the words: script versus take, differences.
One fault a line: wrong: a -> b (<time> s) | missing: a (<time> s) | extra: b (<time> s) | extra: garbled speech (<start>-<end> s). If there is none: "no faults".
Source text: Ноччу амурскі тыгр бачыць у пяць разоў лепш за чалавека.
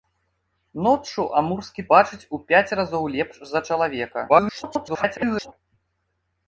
missing: тыгр (1.9 s)
extra: garbled speech (4.3-5.5 s)